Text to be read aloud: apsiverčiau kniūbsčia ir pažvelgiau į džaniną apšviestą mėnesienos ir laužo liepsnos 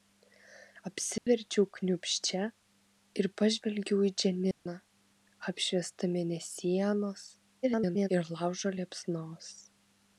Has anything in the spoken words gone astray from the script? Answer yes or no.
yes